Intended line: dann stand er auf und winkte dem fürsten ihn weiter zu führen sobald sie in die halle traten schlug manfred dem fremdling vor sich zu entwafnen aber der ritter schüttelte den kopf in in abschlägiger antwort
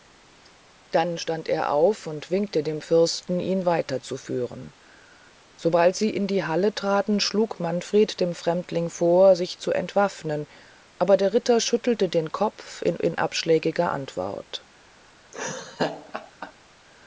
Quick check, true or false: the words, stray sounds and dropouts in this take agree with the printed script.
false